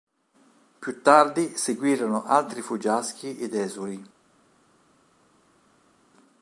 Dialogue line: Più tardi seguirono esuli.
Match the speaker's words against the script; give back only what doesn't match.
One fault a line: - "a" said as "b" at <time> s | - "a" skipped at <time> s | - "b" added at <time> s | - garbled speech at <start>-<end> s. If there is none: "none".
- "altri fuggiaschi ed" added at 2.2 s